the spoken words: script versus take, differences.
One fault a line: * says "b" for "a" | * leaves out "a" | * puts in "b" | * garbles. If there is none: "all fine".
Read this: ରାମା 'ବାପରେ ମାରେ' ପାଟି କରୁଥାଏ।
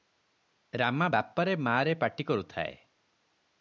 all fine